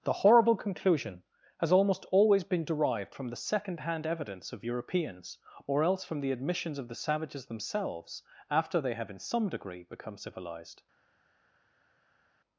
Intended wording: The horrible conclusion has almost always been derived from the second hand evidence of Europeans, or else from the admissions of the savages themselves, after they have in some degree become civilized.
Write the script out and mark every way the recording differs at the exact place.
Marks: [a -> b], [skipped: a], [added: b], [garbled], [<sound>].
The horrible conclusion has almost always been derived from the second hand evidence of Europeans, or else from the admissions of the savages themselves, after they have in some degree become civilized.